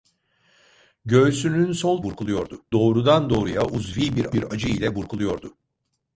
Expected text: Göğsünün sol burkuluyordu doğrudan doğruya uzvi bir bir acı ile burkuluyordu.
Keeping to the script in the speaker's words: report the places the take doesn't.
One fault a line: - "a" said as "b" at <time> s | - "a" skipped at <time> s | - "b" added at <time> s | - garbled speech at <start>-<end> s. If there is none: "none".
none